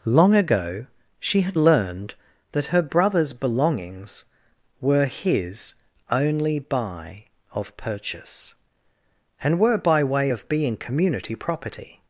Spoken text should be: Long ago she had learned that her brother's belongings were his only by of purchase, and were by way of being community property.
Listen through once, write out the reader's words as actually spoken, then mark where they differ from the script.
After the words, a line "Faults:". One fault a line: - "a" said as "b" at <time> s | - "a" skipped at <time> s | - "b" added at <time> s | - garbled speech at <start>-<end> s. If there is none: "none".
Long ago she had learned that her brother's belongings were his only by of purchase, and were by way of being community property.
Faults:
none